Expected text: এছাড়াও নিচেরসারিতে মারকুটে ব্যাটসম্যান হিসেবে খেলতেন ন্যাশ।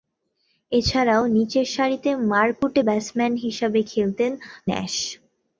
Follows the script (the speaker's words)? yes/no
yes